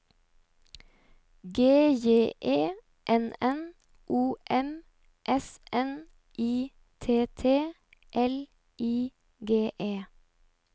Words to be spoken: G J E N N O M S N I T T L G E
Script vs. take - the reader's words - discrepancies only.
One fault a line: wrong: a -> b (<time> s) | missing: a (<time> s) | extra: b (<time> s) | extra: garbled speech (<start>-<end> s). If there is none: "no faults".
extra: I (8.8 s)